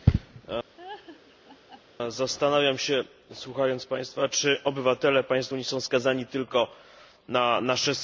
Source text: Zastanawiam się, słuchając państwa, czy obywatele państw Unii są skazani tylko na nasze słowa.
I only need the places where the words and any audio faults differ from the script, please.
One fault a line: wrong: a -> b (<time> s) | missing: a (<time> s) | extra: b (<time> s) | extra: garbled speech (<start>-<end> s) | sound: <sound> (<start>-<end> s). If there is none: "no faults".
sound: laugh (0.8-1.8 s)